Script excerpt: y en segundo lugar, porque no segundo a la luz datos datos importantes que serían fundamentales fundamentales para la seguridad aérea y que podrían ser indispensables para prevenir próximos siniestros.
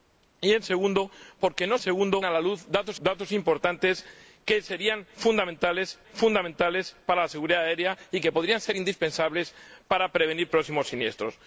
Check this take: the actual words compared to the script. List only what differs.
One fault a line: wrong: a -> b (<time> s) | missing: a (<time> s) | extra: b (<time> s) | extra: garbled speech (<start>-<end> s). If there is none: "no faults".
no faults